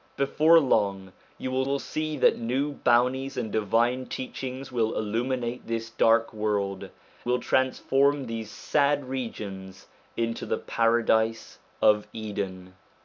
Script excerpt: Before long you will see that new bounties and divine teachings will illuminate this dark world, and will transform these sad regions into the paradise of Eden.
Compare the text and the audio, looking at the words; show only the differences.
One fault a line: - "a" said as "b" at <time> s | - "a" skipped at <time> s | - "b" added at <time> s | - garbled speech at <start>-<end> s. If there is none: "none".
- "will" added at 1.7 s
- "and" skipped at 6.9 s